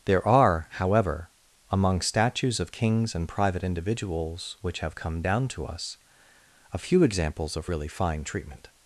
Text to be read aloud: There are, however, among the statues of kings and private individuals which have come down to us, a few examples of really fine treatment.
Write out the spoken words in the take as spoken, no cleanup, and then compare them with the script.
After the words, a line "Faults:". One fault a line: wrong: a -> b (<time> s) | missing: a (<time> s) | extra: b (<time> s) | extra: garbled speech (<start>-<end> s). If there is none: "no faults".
There are, however, among statues of kings and private individuals which have come down to us, a few examples of really fine treatment.
Faults:
missing: the (2.0 s)